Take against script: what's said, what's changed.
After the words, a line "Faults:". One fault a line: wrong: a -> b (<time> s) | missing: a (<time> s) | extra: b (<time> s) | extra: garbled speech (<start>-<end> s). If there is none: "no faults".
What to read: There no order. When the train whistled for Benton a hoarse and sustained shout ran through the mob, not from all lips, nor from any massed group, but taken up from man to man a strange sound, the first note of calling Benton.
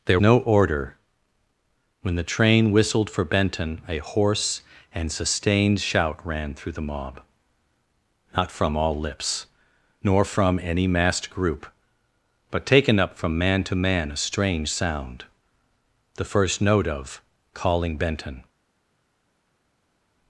There no order. When the train whistled for Benton a hoarse and sustained shout ran through the mob, not from all lips, nor from any massed group, but taken up from man to man a strange sound, the first note of calling Benton.
Faults:
no faults